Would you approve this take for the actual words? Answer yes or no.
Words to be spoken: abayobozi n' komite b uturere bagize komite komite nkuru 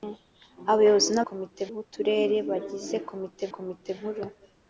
yes